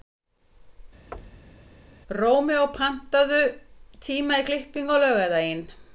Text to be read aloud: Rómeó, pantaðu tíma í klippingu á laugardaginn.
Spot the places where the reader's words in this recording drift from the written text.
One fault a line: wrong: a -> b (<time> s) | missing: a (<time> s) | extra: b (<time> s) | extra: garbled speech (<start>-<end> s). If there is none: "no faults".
no faults